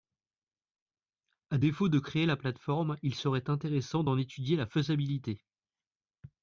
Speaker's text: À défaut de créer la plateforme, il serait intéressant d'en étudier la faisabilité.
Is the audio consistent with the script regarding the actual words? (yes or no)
yes